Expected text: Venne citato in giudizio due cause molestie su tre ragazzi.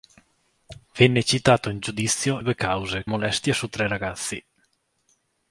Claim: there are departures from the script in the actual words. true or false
false